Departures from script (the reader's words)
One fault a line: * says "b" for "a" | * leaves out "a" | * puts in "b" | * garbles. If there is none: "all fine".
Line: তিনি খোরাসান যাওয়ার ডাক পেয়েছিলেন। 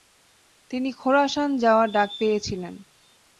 all fine